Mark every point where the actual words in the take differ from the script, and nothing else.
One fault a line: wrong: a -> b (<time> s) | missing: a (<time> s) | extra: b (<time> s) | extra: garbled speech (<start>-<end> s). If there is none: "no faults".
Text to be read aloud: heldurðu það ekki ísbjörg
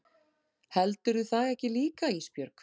extra: líka (1.8 s)